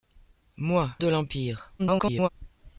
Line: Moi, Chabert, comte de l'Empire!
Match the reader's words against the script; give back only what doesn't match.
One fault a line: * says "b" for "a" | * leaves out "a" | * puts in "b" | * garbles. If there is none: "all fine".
* leaves out "Chabert comte"
* garbles